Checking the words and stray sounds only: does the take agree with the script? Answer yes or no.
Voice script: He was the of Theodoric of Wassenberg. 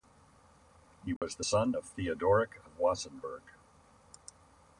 no